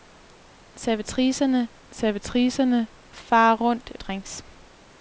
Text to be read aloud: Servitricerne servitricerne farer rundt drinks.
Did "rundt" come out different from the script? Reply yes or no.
no